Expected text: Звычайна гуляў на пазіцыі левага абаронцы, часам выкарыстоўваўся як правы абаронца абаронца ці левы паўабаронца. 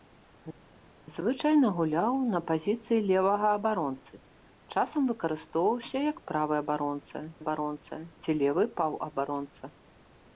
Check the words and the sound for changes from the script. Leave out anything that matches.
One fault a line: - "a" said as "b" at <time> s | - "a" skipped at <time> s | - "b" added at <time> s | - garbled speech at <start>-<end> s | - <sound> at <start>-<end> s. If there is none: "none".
none